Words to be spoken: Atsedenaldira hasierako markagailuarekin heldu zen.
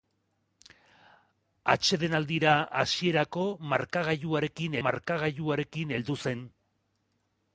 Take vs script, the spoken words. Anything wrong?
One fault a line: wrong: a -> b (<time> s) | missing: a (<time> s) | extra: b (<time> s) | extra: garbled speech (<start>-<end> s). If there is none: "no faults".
extra: markagailuarekin (4.9 s)